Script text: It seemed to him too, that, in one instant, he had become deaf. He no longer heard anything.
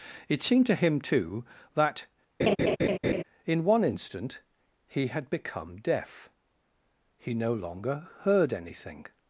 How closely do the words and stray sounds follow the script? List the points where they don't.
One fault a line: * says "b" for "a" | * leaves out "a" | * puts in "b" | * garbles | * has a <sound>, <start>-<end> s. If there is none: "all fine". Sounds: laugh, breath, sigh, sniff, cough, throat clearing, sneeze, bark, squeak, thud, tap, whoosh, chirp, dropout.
* has a laugh, 2.4-3.2 s